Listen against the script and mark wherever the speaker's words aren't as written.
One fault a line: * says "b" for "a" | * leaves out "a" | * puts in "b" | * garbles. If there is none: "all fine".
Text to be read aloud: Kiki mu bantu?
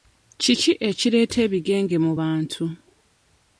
* puts in "ekireeta ebigenge"